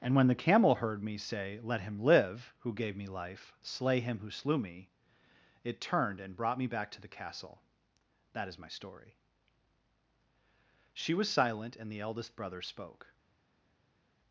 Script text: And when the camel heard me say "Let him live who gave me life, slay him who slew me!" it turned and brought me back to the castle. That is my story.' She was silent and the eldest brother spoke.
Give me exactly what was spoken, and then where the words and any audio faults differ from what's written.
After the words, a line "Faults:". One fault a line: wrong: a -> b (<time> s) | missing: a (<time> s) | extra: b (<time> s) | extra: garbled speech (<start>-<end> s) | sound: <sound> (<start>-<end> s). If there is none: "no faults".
And when the camel heard me say "Let him live who gave me life, slay him who slew me!" it turned and brought me back to the castle. That is my story.' She was silent and the eldest brother spoke.
Faults:
no faults